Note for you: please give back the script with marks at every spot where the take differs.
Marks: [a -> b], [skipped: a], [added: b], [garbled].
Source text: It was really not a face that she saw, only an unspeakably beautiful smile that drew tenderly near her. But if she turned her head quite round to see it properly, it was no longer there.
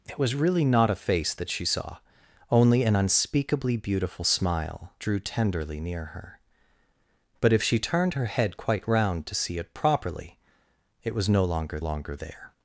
It was really not a face that she saw, only an unspeakably beautiful smile [skipped: that] drew tenderly near her. But if she turned her head quite round to see it properly, it was no longer [added: longer] there.